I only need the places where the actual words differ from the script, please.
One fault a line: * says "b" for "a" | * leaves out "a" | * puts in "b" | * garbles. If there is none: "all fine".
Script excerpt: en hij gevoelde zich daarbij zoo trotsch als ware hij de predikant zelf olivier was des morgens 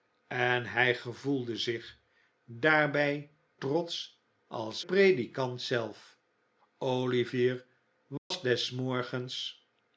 * leaves out "zoo"
* leaves out "ware hij de"